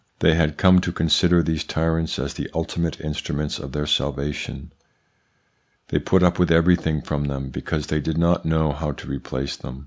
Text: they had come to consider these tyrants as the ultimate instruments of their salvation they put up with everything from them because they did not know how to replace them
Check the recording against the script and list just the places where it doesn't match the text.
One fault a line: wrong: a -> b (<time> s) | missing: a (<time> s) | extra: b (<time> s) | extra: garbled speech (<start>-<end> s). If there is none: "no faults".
no faults